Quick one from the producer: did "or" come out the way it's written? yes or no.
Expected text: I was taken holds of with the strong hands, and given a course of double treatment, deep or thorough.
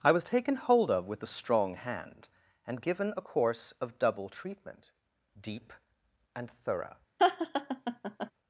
no